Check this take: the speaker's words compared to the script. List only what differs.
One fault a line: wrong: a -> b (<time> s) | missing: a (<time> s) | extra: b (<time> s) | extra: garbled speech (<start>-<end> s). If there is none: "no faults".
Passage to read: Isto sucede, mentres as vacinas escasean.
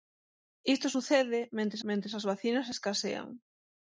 extra: mentres (1.9 s)